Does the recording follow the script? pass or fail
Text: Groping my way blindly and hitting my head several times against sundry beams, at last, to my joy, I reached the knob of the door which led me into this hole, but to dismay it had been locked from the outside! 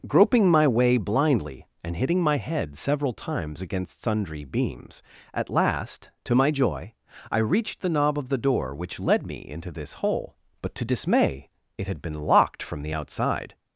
pass